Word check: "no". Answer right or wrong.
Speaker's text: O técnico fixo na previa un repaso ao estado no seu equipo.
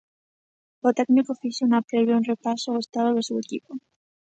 wrong